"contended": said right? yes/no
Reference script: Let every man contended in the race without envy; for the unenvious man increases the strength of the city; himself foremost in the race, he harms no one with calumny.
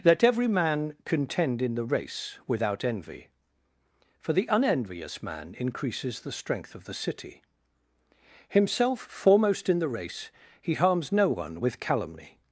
no